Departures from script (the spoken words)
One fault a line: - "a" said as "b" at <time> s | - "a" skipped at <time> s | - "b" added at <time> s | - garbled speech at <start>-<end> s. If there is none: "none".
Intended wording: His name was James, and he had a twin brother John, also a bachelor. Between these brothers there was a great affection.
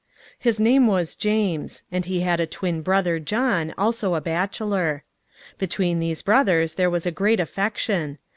none